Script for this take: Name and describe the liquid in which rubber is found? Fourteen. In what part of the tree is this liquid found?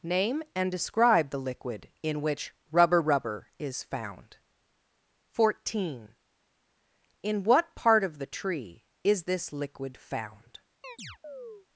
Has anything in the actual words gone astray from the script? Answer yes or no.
yes